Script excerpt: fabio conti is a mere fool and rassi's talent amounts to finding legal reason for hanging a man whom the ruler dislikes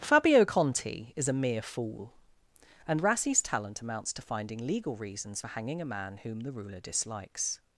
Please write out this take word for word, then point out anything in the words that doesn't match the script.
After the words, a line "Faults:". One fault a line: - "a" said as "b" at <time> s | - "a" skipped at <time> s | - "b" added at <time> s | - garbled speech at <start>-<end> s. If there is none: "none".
fabio conti is a mere fool and rassi's talent amounts to finding legal reasons for hanging a man whom the ruler dislikes
Faults:
- "reason" said as "reasons" at 4.9 s